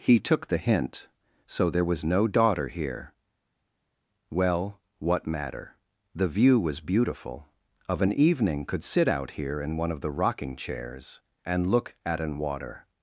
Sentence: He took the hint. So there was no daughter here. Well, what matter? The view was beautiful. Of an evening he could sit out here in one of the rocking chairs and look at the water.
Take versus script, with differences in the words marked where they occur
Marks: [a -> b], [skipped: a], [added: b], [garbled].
He took the hint. So there was no daughter here. Well, what matter? The view was beautiful. Of an evening [skipped: he] could sit out here in one of the rocking chairs and look at [the -> an] water.